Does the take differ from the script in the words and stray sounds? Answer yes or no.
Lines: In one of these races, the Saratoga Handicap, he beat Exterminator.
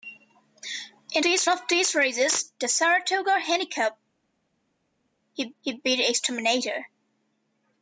yes